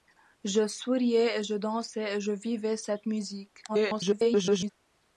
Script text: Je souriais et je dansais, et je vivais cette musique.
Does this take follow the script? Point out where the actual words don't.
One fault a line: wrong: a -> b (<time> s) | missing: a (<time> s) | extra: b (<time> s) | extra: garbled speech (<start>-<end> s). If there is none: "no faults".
extra: garbled speech (3.7-4.7 s)